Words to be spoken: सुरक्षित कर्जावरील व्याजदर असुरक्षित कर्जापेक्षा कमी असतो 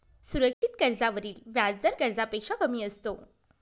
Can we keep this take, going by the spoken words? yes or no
no